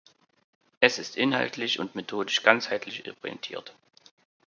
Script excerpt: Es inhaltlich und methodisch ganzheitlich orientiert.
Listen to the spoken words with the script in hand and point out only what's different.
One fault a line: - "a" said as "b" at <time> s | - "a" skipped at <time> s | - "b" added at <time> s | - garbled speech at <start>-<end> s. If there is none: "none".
- "ist" added at 1.0 s